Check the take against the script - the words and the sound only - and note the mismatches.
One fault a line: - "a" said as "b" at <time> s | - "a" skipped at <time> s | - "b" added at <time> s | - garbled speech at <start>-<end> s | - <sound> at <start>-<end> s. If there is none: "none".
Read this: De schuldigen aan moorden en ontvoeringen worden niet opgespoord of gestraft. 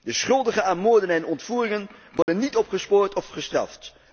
- dropout at 2.2-2.3 s